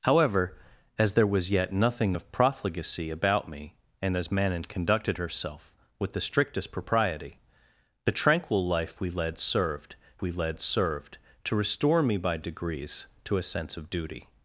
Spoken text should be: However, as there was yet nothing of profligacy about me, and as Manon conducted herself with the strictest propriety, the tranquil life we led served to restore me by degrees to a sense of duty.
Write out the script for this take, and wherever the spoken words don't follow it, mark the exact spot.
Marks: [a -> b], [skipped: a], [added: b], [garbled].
However, as there was yet nothing of profligacy about me, and as Manon conducted herself with the strictest propriety, the tranquil life we led served [added: we led served] to restore me by degrees to a sense of duty.